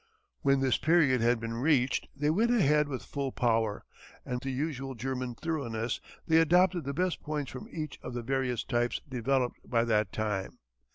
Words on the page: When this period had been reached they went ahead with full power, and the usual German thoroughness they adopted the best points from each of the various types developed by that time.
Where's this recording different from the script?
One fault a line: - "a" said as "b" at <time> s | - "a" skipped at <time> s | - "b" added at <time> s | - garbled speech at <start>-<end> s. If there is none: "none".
none